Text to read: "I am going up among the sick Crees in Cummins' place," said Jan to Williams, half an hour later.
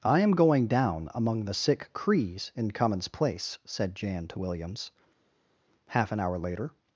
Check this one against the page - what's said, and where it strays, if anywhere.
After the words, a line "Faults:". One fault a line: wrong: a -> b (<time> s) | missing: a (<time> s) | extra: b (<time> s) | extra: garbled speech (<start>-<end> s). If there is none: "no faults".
"I am going down among the sick Crees in Cummins' place," said Jan to Williams, half an hour later.
Faults:
wrong: up -> down (0.7 s)